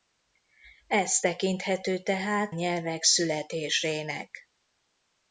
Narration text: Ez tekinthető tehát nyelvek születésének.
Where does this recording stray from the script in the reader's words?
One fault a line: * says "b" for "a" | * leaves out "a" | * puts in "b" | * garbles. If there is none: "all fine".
all fine